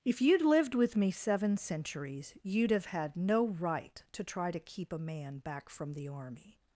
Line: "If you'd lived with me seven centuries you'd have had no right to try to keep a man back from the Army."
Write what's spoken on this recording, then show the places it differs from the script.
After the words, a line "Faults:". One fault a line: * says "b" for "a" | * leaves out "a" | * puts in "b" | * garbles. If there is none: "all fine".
"If you'd lived with me seven centuries you'd have had no right to try to keep a man back from the Army."
Faults:
all fine